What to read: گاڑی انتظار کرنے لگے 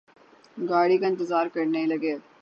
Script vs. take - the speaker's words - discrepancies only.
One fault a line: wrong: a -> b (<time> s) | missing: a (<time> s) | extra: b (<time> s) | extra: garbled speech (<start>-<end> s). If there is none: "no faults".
extra: کا (1.0 s)